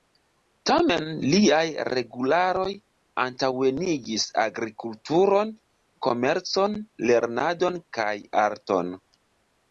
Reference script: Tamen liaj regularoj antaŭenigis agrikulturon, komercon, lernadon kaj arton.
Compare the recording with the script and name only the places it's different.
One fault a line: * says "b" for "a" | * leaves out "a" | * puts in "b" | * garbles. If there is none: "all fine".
all fine